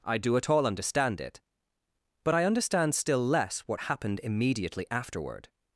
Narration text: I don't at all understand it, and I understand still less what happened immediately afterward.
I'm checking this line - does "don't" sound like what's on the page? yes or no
no